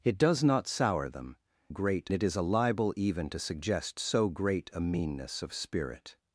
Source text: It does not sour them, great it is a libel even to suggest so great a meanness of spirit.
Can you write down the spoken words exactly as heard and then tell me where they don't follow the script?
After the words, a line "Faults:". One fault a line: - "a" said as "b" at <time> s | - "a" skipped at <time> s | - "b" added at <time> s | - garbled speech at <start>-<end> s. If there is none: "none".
It does not sour them, great it is a libel even to suggest so great a meanness of spirit.
Faults:
none